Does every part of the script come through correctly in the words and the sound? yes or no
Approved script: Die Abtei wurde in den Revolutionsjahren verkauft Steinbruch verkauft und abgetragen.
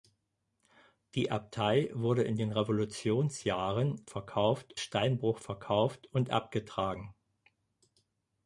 yes